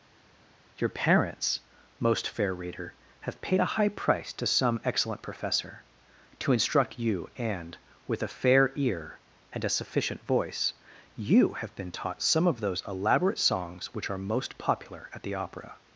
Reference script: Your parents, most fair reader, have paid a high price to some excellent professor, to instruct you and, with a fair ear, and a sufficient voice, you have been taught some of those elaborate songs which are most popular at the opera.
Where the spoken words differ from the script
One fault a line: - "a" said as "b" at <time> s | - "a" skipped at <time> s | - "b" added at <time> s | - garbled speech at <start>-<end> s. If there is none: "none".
none